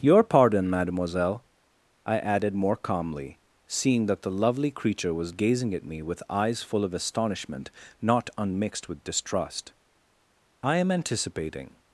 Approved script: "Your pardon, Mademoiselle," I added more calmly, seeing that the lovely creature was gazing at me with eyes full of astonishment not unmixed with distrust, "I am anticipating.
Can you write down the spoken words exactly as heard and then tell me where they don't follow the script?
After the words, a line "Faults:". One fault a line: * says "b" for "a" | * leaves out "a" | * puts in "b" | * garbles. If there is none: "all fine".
"Your pardon, Mademoiselle," I added more calmly, seeing that the lovely creature was gazing at me with eyes full of astonishment not unmixed with distrust, "I am anticipating.
Faults:
all fine